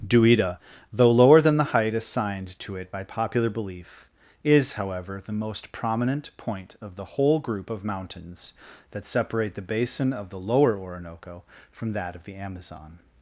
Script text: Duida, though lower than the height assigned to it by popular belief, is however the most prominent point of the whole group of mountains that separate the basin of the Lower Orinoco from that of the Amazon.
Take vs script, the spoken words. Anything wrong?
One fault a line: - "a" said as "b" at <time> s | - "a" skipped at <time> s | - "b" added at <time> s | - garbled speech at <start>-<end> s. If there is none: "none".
none